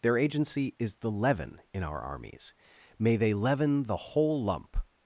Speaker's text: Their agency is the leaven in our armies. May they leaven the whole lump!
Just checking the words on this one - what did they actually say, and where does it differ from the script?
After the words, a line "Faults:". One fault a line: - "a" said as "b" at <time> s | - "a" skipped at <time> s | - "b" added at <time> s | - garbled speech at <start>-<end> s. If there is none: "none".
Their agency is the leaven in our armies. May they leaven the whole lump!
Faults:
none